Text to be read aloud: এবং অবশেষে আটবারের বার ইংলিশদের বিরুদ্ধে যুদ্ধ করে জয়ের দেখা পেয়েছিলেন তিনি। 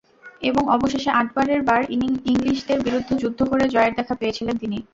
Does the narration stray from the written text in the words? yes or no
no